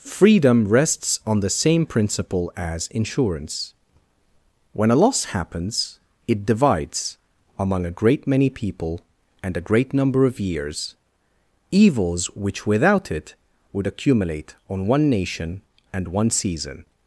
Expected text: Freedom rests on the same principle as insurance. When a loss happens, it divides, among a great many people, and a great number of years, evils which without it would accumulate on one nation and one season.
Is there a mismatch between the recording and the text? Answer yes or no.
no